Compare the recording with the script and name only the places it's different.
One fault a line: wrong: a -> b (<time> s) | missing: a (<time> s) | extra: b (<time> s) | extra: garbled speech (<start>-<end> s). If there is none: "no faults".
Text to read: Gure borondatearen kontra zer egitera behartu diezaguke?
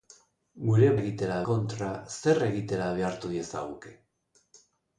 wrong: borondatearen -> egitera (1.0 s)